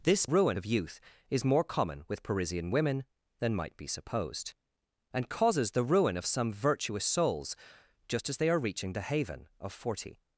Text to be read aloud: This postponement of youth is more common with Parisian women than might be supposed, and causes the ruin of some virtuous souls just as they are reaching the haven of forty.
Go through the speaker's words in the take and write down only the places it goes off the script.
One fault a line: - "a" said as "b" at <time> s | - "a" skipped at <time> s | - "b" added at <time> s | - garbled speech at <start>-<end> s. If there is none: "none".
- "postponement" said as "ruin" at 0.2 s